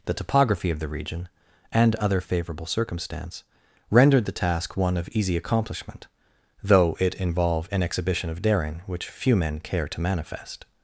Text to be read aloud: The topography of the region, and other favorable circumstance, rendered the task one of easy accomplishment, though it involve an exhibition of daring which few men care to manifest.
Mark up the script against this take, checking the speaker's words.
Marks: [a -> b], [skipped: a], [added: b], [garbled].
The topography of the region, and other favorable circumstance, rendered the task one of easy accomplishment, though it involve an exhibition of daring which few men care to manifest.